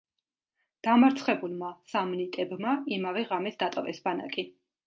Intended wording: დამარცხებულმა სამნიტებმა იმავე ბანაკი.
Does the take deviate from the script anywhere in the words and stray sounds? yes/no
yes